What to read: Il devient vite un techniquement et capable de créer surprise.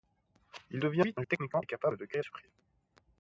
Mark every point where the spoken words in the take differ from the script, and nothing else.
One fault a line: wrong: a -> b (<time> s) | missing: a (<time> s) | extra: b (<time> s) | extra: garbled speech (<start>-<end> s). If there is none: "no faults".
no faults